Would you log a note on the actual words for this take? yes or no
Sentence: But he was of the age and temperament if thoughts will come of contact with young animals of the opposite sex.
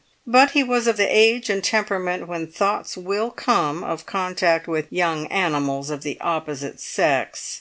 yes